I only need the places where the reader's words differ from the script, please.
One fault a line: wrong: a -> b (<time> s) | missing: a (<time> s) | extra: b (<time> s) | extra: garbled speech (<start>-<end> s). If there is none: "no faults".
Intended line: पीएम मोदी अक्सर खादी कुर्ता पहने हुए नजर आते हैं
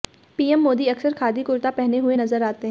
no faults